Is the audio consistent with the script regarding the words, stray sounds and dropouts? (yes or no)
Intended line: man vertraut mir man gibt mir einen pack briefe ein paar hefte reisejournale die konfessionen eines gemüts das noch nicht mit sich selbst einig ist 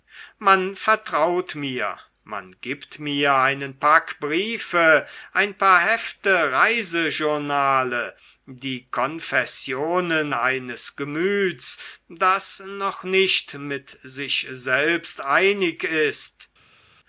yes